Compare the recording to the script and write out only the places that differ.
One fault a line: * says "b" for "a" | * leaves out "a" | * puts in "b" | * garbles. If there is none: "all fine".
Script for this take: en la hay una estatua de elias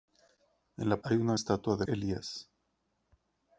all fine